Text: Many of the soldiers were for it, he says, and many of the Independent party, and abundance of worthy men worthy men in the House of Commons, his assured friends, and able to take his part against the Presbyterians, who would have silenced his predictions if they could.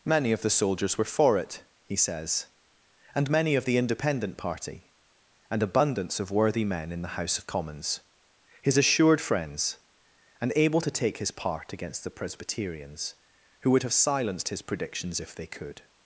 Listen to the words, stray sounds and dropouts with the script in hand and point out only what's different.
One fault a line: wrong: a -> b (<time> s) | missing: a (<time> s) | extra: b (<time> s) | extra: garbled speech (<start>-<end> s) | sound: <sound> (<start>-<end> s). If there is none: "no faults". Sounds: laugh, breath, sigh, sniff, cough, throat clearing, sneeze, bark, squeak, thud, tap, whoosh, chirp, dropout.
missing: worthy men (6.9 s)